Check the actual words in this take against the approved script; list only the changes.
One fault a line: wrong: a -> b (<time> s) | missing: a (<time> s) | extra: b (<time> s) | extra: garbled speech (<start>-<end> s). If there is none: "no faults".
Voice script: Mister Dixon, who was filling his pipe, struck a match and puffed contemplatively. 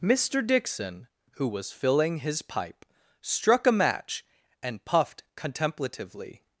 no faults